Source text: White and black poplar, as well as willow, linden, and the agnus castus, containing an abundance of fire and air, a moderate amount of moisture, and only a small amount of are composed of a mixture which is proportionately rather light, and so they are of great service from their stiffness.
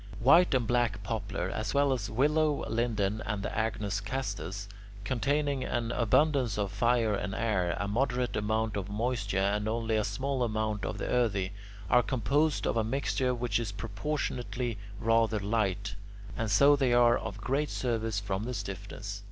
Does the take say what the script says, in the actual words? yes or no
no